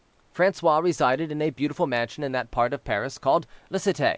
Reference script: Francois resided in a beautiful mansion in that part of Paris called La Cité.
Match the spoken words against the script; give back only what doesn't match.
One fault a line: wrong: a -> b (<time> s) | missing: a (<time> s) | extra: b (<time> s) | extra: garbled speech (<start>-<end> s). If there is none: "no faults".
no faults